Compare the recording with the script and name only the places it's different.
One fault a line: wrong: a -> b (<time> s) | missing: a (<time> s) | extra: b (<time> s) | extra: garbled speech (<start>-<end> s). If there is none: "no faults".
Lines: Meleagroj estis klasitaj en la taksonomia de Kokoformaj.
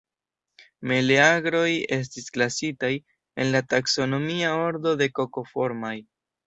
extra: ordo (4.7 s)